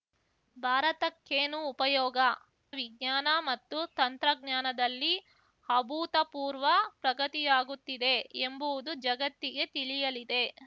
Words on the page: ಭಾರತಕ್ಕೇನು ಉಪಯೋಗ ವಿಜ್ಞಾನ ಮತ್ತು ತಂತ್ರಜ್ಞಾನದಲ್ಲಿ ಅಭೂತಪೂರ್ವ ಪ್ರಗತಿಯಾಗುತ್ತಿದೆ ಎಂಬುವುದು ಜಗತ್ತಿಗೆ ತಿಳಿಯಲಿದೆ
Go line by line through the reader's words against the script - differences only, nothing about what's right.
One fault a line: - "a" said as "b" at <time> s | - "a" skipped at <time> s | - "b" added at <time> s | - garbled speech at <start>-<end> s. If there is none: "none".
none